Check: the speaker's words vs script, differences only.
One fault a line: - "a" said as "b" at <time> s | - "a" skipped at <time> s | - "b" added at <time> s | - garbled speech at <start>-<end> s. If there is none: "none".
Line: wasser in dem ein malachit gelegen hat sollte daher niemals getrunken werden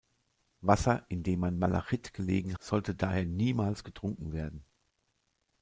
- "hat" skipped at 2.6 s